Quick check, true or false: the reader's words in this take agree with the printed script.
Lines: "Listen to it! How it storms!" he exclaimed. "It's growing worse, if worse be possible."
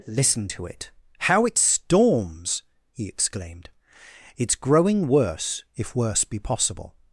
true